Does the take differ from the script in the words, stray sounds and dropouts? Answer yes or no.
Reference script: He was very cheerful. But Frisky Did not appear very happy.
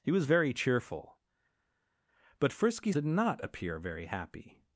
no